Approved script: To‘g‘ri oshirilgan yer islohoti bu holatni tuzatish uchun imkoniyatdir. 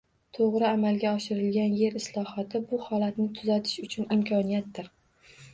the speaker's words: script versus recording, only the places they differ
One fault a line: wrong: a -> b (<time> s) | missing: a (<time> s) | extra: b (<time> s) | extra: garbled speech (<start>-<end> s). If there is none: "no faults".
extra: amalga (0.7 s)